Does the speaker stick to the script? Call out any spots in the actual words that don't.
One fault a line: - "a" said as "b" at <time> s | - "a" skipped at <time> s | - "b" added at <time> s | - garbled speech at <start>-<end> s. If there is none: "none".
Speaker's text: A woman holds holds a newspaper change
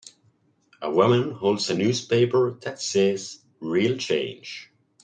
- "holds" skipped at 1.7 s
- "that says Real" added at 2.6 s